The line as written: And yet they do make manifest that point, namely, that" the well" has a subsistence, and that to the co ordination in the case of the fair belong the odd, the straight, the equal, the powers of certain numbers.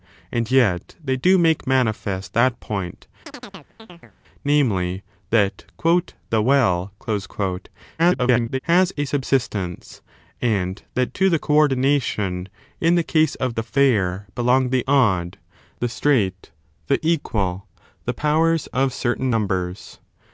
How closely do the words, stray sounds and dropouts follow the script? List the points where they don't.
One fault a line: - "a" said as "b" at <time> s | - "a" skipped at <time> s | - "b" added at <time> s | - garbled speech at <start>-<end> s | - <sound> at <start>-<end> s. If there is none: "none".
- chirp at 3.3-4.1 s
- garbled speech at 8.0-8.6 s